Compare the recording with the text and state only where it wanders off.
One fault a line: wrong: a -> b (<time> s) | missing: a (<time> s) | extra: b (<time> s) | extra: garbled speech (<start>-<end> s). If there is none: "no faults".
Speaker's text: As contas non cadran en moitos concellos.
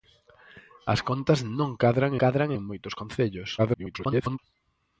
extra: cadran (2.2 s)
extra: garbled speech (3.6-4.4 s)